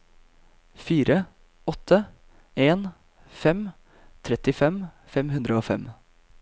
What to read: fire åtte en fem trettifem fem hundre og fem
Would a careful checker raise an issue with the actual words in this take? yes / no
no